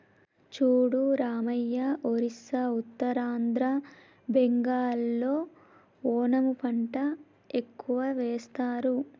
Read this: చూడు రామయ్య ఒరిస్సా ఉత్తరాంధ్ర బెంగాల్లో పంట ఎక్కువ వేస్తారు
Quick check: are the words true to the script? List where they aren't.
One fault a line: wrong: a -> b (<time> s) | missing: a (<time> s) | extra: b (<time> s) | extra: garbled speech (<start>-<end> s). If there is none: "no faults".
extra: ఓనము (6.1 s)